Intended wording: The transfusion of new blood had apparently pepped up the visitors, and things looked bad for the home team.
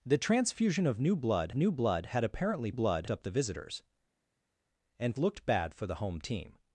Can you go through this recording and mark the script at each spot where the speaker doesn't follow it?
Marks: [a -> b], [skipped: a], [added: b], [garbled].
The transfusion of new blood [added: new blood] had apparently [pepped -> blood] up the visitors, and [skipped: things] looked bad for the home team.